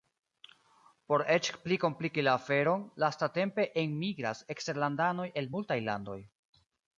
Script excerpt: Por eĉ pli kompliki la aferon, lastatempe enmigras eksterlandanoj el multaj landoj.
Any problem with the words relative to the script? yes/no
no